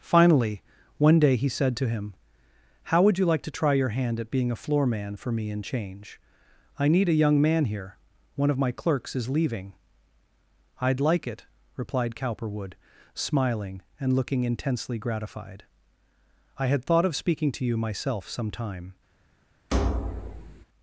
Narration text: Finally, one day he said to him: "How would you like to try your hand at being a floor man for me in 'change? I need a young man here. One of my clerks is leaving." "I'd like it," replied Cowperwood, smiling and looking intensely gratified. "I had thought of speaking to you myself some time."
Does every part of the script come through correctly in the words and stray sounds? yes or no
no